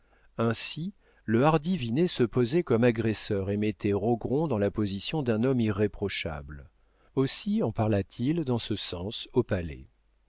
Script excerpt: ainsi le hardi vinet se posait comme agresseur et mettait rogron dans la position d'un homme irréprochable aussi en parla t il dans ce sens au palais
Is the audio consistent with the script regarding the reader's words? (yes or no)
yes